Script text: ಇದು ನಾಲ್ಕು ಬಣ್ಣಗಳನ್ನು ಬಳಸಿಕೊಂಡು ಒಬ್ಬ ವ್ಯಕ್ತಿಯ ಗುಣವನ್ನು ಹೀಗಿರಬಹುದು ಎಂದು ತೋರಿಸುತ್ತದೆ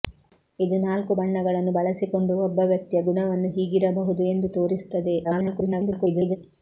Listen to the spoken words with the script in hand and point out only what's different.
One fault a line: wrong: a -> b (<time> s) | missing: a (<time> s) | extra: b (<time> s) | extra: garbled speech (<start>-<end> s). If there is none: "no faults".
extra: garbled speech (5.2-6.4 s)